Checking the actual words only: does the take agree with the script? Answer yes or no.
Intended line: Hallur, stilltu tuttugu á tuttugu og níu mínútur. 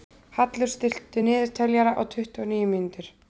no